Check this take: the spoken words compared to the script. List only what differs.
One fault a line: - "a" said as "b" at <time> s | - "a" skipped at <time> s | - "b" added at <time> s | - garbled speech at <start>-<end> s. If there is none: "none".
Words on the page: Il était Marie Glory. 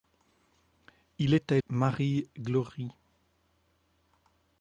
none